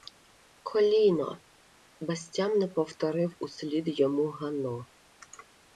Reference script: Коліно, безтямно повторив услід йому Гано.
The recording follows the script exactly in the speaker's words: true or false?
true